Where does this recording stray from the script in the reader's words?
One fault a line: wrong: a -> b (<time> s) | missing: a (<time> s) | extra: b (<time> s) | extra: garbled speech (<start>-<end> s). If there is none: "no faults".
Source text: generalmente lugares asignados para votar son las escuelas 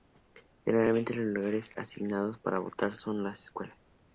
extra: los (1.1 s)